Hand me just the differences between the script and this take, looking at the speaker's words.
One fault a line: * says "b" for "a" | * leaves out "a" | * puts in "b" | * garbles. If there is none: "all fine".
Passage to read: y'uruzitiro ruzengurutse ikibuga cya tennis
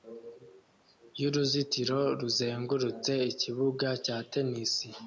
all fine